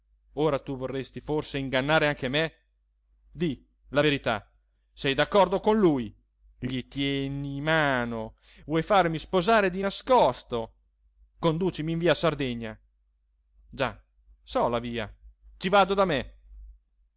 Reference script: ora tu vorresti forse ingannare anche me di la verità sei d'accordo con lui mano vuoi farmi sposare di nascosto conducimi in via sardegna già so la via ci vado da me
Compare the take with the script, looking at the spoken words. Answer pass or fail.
fail